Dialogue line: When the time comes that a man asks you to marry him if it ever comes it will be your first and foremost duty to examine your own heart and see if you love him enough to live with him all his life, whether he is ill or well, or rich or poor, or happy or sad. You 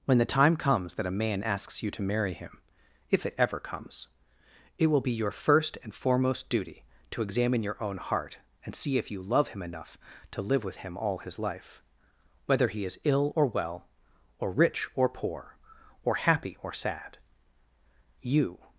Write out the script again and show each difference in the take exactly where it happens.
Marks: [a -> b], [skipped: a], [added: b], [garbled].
When the time comes that a man asks you to marry him if it ever comes it will be your first and foremost duty to examine your own heart and see if you love him enough to live with him all his life, whether he is ill or well, or rich or poor, or happy or sad. You